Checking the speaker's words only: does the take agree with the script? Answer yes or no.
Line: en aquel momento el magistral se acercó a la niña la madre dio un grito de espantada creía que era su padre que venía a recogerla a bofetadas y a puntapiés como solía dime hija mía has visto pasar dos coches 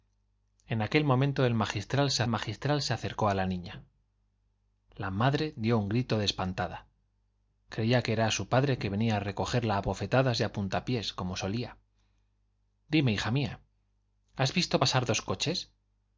no